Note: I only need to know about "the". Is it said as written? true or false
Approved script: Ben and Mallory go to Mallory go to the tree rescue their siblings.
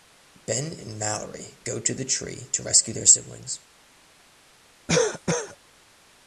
false